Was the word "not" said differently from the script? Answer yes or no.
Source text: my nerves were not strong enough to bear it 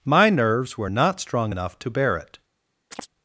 no